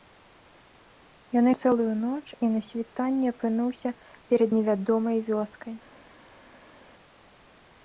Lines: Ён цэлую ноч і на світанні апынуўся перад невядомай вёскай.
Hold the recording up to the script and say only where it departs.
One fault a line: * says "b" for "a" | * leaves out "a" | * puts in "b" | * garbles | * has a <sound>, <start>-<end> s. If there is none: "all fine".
all fine